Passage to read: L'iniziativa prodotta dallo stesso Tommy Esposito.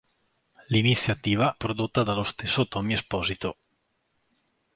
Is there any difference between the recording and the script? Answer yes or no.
no